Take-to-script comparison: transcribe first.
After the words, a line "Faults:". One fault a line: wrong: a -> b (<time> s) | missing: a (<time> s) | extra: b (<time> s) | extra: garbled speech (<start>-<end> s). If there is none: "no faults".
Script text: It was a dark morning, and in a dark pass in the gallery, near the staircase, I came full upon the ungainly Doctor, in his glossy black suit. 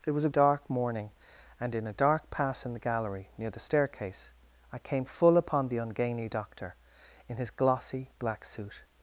It was a dark morning, and in a dark pass in the gallery, near the staircase, I came full upon the ungainly Doctor, in his glossy black suit.
Faults:
no faults